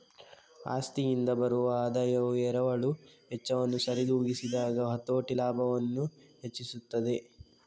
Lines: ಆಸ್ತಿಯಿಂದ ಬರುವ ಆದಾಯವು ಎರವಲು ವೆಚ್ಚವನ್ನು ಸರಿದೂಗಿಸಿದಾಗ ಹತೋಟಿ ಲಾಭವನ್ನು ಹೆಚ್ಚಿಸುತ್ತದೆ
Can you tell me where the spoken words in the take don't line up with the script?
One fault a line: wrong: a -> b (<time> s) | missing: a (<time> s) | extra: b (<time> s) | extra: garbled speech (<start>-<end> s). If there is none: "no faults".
no faults